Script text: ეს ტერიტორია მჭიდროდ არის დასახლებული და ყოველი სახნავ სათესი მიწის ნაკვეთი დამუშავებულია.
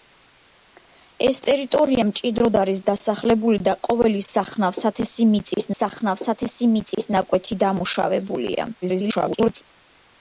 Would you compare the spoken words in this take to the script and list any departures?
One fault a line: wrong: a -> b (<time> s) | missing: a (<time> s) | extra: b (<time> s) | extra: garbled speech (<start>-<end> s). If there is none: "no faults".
extra: სახნავ სათესი მიწის (5.8 s)
extra: garbled speech (8.8-9.6 s)